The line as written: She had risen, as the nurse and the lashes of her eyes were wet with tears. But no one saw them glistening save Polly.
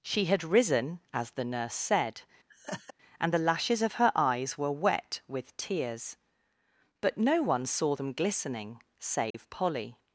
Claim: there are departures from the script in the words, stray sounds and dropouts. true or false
true